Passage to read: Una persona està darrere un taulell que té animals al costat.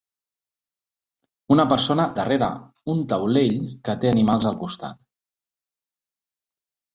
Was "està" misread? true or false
true